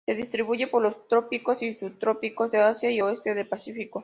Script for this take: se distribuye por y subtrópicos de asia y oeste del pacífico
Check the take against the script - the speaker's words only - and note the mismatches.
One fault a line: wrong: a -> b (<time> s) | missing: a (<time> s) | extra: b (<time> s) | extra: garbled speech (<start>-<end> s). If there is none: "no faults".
extra: los trópicos (0.8 s)